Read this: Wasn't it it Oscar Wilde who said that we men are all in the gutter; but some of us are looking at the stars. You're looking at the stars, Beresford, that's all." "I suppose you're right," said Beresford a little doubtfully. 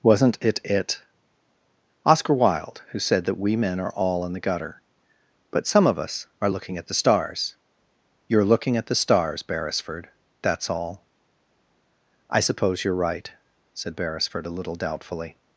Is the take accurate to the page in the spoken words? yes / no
yes